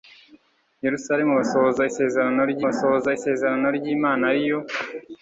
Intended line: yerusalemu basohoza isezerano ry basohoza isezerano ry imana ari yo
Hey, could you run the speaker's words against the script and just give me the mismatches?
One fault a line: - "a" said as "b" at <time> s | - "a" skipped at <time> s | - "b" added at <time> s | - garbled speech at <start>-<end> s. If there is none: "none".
none